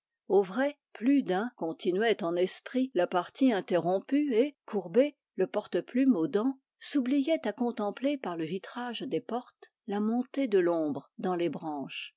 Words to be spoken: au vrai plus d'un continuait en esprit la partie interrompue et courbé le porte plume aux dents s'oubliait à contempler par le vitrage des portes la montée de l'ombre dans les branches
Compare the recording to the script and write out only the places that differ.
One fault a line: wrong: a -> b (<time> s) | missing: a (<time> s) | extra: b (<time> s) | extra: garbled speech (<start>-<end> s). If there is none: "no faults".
no faults